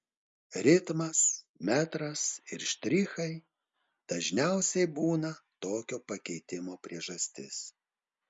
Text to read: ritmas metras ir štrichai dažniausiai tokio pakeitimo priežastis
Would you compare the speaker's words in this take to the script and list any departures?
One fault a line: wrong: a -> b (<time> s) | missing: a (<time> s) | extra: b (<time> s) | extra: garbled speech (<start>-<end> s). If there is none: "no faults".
extra: būna (5.0 s)